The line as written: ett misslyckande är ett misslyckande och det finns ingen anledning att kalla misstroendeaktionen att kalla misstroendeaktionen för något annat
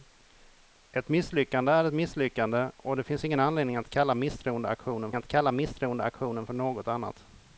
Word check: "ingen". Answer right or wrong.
right